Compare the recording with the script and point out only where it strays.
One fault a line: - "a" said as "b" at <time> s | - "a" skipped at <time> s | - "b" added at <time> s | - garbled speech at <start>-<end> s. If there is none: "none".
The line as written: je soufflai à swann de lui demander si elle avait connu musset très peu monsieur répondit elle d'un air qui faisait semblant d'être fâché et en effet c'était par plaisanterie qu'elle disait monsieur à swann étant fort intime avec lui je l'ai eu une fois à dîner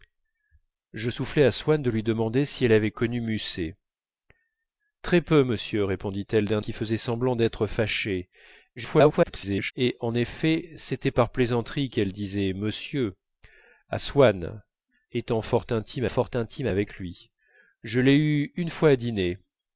- "air" skipped at 6.6 s
- garbled speech at 8.8-9.7 s
- "fort intime" added at 16.1 s